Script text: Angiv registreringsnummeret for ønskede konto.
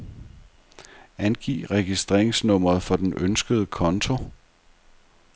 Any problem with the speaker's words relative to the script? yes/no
yes